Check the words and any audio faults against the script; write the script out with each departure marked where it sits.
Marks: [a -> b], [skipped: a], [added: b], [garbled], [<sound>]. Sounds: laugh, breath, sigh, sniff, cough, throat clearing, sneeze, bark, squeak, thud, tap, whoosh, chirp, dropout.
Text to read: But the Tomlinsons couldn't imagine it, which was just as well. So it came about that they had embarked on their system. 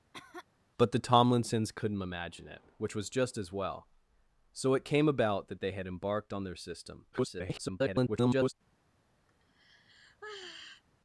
[cough] But the Tomlinsons couldn't imagine it, which was just as well. So it came about that they had embarked on their system. [garbled] [sigh]